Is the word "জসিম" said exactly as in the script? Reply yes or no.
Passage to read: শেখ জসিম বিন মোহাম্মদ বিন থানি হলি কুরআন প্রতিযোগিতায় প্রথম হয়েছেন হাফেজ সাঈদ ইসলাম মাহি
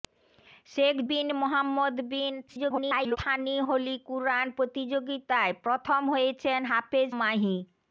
no